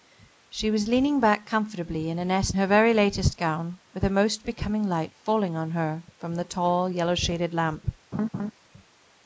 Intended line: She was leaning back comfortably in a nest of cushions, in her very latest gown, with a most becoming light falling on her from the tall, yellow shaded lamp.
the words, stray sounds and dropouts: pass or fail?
fail